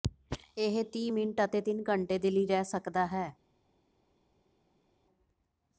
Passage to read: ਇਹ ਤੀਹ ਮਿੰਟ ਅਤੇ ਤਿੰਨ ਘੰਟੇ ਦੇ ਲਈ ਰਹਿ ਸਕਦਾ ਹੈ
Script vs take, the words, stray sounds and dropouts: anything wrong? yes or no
no